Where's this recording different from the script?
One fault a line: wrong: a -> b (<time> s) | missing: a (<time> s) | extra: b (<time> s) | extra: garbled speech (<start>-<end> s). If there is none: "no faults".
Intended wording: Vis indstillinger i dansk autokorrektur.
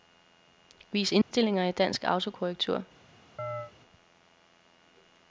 no faults